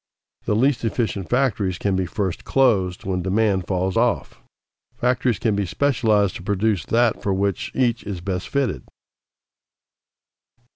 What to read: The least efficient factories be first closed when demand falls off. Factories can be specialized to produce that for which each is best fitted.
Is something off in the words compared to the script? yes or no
yes